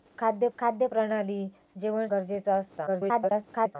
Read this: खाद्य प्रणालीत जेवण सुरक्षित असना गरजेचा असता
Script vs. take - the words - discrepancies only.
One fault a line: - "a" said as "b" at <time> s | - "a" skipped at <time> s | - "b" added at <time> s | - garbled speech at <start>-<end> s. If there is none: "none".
- "खाद्य" added at 0.6 s
- "सुरक्षित असना" skipped at 2.1 s
- garbled speech at 2.9-3.8 s